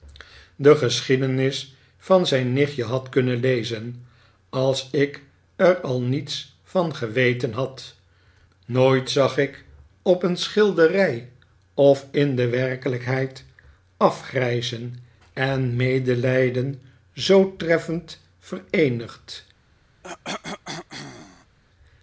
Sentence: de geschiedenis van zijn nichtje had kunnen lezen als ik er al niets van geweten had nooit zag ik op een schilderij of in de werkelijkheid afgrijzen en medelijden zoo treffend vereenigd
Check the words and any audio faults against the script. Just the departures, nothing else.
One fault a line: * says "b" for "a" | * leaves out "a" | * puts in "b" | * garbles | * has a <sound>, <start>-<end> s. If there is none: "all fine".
* has a cough, 20.0-21.6 s